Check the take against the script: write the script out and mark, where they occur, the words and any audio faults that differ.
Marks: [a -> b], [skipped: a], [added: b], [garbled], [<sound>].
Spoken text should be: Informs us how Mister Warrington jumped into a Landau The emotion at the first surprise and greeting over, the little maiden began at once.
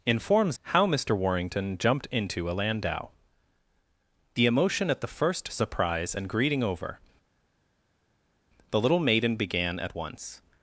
Informs [skipped: us] how Mister Warrington jumped into a Landau The emotion at the first surprise and greeting over, the little maiden began at once.